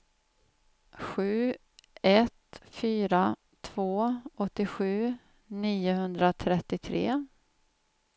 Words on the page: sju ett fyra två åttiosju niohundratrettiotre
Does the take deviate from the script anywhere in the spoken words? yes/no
no